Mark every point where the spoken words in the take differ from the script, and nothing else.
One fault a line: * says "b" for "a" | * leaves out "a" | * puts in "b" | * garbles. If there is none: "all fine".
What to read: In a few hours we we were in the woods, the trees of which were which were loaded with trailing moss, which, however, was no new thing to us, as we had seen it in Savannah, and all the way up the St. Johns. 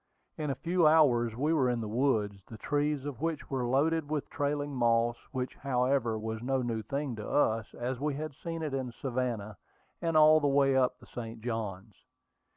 * leaves out "we"
* leaves out "which were"